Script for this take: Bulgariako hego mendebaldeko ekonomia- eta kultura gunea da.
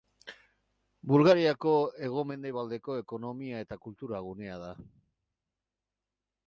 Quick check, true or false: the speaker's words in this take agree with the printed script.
true